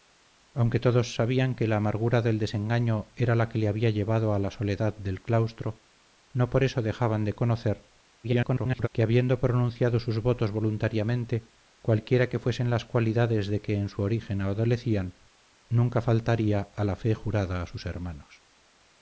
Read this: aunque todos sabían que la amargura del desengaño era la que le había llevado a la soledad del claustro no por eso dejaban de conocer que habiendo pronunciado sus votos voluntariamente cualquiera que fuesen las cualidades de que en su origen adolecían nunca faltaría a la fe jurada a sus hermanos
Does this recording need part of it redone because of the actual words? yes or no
yes